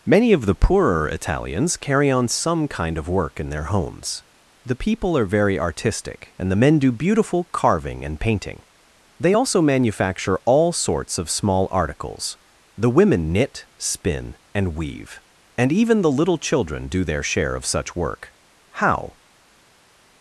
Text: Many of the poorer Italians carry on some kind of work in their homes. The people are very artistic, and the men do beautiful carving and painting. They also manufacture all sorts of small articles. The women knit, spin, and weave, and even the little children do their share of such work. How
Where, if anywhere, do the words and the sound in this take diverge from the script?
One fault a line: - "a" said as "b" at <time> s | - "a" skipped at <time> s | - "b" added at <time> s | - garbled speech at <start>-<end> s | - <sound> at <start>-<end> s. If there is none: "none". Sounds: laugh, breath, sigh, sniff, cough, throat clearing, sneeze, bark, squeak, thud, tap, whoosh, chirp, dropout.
none